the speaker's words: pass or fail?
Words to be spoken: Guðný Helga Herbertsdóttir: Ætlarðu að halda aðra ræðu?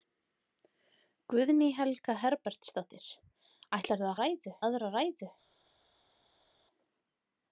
fail